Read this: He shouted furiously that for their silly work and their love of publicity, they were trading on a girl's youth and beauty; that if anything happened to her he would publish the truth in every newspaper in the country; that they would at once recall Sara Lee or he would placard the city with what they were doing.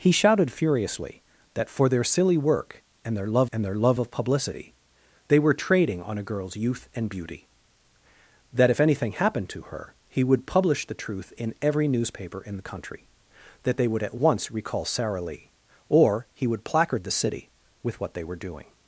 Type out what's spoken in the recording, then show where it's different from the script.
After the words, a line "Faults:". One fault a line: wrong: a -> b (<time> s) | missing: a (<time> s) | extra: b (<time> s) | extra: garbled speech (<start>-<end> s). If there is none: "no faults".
He shouted furiously that for their silly work and their love and their love of publicity, they were trading on a girl's youth and beauty; that if anything happened to her he would publish the truth in every newspaper in the country; that they would at once recall Sara Lee or he would placard the city with what they were doing.
Faults:
extra: and their love (3.5 s)